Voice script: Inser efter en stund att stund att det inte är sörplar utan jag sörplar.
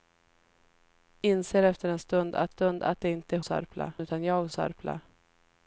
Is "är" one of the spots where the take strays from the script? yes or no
no